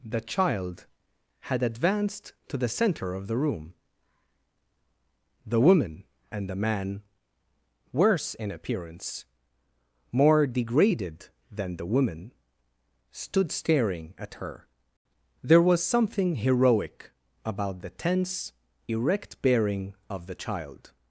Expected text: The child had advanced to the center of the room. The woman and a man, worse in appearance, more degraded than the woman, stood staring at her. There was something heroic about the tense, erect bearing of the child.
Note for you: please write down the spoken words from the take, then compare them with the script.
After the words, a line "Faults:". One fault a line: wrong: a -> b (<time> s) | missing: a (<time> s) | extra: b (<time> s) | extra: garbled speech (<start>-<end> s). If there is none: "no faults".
The child had advanced to the center of the room. The woman and the man, worse in appearance, more degraded than the woman, stood staring at her. There was something heroic about the tense, erect bearing of the child.
Faults:
wrong: a -> the (6.5 s)